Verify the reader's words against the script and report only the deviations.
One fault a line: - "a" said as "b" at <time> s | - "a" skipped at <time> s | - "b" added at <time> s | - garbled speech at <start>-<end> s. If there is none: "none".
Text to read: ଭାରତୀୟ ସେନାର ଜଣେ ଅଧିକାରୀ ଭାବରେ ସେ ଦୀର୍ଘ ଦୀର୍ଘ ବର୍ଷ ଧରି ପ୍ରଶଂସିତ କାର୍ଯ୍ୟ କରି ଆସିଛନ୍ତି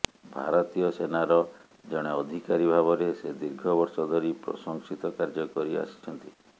- "ଦୀର୍ଘ" skipped at 3.7 s